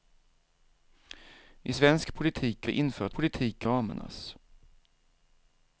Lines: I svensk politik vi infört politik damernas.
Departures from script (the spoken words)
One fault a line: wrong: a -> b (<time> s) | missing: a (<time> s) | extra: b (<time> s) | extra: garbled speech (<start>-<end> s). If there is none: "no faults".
no faults